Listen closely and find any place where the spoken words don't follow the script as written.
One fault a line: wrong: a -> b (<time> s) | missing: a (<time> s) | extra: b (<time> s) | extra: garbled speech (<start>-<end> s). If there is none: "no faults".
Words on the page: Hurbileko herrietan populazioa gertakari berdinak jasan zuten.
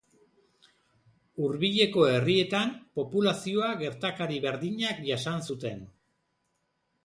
no faults